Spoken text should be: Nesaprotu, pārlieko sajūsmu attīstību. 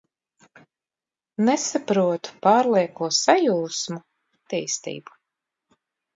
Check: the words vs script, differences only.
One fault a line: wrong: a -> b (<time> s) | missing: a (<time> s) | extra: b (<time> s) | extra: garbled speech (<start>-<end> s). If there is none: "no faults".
no faults